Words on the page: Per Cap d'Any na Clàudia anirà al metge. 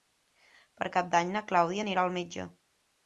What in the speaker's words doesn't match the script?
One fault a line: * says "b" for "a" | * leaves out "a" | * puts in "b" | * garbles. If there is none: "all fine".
all fine